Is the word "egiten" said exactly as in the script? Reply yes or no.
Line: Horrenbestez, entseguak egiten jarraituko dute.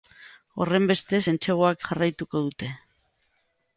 no